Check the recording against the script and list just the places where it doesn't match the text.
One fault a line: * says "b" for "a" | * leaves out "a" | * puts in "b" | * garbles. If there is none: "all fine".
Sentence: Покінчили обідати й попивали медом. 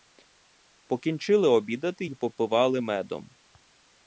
all fine